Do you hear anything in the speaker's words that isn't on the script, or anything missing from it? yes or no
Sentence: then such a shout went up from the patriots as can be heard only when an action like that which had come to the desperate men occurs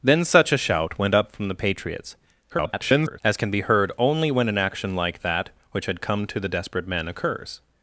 yes